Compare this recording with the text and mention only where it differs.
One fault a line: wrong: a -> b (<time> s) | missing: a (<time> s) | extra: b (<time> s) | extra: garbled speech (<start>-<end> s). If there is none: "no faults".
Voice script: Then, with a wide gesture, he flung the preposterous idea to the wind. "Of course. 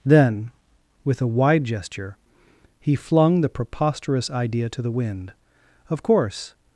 no faults